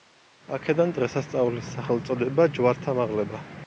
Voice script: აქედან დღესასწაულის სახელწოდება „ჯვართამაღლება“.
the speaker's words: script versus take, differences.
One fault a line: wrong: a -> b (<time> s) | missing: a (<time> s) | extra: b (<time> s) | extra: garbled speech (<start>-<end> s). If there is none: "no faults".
no faults